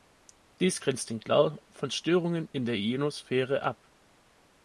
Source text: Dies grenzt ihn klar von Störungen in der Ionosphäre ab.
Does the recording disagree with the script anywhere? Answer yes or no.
no